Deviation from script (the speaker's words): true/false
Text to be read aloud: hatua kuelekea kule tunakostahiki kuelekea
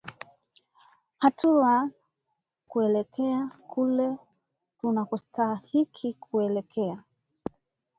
false